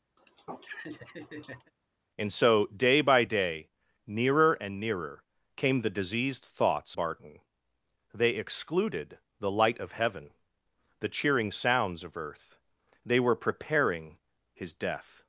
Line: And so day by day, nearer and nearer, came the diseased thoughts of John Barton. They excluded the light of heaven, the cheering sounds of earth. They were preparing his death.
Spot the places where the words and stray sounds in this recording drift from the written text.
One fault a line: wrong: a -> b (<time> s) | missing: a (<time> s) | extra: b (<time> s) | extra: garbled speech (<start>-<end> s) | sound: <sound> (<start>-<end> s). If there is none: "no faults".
sound: laugh (0.2-1.7 s)
missing: of John (7.0 s)